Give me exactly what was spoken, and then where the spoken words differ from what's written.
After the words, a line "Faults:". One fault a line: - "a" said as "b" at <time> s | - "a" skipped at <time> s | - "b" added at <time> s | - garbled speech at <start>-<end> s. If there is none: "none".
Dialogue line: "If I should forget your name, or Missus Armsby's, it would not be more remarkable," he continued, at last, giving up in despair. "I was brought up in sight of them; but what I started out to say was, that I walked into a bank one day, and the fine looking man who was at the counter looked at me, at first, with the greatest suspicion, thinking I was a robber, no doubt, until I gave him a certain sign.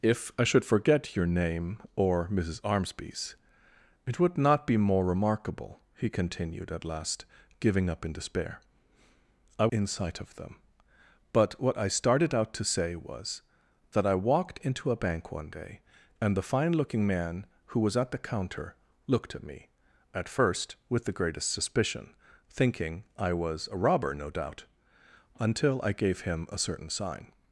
"If I should forget your name, or Missus Armsby's, it would not be more remarkable," he continued, at last, giving up in despair. "I in sight of them; but what I started out to say was, that I walked into a bank one day, and the fine looking man who was at the counter looked at me, at first, with the greatest suspicion, thinking I was a robber, no doubt, until I gave him a certain sign.
Faults:
- "was brought up" skipped at 9.7 s